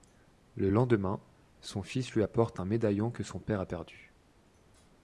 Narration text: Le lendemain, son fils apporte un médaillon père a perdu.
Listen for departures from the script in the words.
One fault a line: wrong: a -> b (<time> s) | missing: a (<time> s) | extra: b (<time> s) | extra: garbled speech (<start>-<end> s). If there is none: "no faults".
extra: lui (2.1 s)
extra: que son (3.1 s)